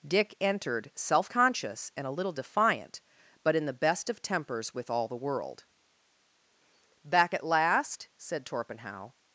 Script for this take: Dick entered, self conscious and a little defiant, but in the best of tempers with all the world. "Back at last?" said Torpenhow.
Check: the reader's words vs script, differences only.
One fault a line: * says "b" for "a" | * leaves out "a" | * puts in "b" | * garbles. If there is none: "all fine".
all fine